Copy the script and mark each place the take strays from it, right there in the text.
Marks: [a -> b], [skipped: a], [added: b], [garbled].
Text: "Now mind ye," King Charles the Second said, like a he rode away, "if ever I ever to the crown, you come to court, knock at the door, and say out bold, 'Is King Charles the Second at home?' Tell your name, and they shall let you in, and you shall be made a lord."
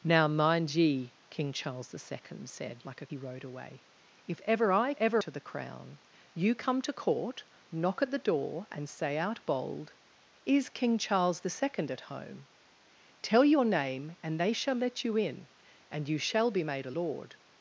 "Now mind ye," King Charles the Second said, like a he rode away, "if ever I ever to the crown, you come to court, knock at the door, and say out bold, 'Is King Charles the Second at home?' Tell your name, and they shall let you in, and you shall be made a lord."